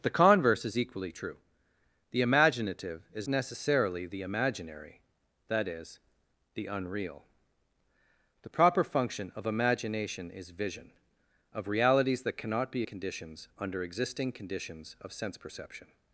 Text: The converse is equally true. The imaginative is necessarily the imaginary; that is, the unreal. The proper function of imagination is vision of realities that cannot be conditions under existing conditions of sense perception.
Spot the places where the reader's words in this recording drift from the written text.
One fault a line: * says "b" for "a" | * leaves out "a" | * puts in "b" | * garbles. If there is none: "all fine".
all fine